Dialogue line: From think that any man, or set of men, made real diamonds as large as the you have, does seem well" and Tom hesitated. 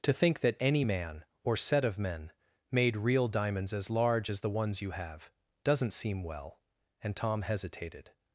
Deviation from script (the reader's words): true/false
true